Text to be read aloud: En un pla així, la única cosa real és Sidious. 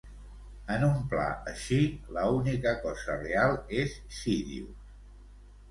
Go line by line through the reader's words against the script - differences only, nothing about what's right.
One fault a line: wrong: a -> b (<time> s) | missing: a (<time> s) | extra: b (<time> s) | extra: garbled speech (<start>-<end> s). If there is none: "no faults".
no faults